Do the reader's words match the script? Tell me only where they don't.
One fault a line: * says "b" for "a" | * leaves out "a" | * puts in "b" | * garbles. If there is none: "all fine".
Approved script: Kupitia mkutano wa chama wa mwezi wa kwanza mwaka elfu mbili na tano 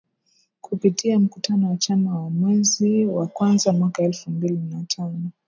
all fine